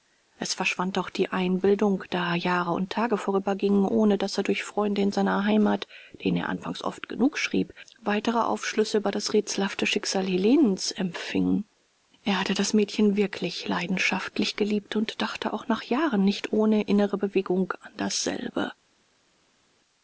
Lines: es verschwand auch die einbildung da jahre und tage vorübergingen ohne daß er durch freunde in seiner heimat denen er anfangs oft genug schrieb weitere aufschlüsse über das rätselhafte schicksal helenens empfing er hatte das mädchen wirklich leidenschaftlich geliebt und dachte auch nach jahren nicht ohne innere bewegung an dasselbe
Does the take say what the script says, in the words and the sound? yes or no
yes